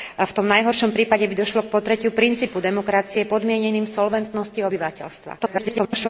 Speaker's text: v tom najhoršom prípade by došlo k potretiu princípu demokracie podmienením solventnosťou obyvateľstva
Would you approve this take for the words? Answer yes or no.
no